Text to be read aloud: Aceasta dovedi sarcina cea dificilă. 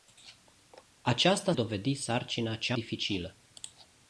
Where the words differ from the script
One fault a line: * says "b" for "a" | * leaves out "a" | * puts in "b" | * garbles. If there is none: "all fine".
all fine